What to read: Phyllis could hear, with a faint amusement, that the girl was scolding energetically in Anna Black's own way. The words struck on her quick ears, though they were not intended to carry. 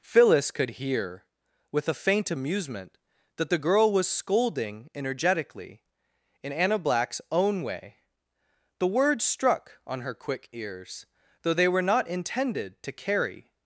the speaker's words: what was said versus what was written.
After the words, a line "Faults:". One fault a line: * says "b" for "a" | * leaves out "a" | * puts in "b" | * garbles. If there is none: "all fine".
Phyllis could hear, with a faint amusement, that the girl was scolding energetically in Anna Black's own way. The words struck on her quick ears, though they were not intended to carry.
Faults:
all fine